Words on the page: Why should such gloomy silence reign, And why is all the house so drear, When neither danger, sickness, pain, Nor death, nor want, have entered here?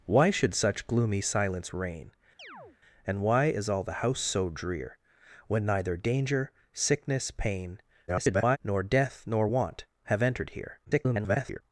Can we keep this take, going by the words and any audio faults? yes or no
no